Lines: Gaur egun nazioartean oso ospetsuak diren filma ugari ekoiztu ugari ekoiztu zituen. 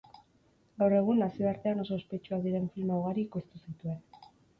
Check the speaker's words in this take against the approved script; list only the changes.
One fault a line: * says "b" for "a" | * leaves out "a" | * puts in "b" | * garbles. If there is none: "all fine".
* leaves out "ugari ekoiztu"